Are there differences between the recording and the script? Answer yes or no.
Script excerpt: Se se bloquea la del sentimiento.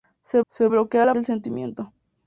no